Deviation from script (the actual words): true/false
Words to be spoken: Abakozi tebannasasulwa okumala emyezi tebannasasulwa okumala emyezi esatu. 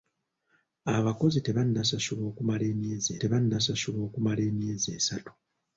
false